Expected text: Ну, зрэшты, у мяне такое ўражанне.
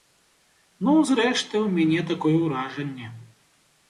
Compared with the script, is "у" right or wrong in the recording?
right